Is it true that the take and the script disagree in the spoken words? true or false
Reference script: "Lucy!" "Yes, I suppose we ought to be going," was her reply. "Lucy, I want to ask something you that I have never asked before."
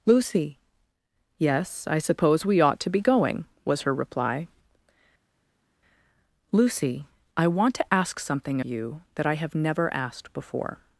false